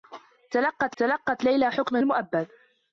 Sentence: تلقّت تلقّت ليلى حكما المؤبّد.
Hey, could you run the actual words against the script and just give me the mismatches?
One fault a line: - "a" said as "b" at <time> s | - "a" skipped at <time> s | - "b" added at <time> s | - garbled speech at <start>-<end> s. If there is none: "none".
none